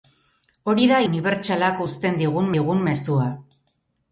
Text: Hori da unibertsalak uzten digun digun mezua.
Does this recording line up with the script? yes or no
yes